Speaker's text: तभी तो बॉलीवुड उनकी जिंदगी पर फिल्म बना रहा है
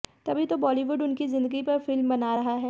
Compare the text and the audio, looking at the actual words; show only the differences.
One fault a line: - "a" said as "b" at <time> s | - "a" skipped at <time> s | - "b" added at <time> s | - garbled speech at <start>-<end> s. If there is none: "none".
none